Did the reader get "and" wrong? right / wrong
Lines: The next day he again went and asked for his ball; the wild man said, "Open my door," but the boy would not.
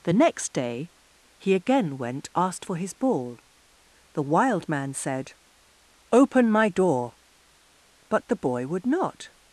wrong